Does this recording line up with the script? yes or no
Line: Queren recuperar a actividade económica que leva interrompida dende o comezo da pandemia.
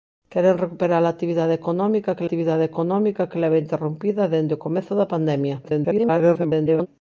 no